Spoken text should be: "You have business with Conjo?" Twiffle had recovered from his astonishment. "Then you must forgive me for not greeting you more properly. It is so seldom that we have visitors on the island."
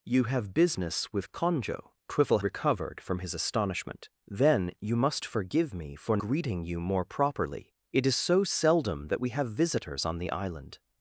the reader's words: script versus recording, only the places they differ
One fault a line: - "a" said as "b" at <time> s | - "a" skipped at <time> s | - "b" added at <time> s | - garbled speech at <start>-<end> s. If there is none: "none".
- "had" skipped at 2.4 s
- "not" skipped at 6.2 s